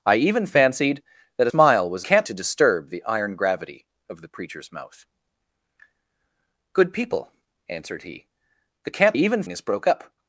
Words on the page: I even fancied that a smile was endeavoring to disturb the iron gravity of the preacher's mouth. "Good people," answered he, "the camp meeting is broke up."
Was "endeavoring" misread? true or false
true